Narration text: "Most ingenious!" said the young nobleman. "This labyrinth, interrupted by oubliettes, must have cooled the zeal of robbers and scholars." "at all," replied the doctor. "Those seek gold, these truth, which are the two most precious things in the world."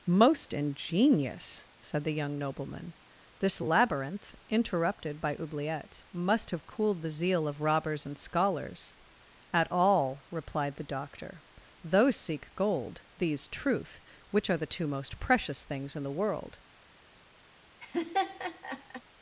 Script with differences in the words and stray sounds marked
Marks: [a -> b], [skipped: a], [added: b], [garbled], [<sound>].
"Most ingenious!" said the young nobleman. "This labyrinth, interrupted by oubliettes, must have cooled the zeal of robbers and scholars." "at all," replied the doctor. "Those seek gold, these truth, which are the two most precious things in the world." [laugh]